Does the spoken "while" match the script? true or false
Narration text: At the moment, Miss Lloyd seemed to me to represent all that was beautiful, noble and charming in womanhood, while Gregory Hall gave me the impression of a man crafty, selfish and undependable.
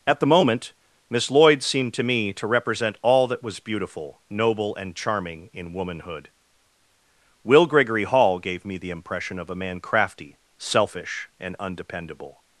false